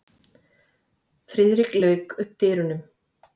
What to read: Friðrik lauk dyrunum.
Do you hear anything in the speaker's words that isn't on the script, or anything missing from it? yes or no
yes